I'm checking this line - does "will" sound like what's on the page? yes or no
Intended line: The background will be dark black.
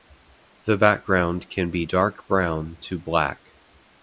no